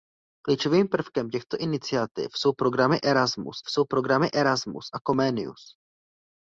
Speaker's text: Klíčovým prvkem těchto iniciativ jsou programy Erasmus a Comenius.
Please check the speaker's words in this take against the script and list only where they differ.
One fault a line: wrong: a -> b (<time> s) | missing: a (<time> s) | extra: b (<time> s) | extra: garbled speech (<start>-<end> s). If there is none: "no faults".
extra: jsou programy Erasmus (3.7 s)